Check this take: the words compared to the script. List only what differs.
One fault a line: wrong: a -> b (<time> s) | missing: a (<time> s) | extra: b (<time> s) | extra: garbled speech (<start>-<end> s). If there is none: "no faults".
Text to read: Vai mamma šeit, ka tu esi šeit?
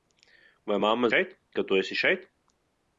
no faults